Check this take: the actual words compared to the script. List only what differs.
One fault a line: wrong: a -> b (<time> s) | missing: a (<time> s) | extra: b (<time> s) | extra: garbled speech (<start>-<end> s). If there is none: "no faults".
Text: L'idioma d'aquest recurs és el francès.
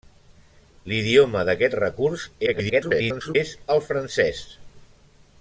extra: garbled speech (2.5-3.4 s)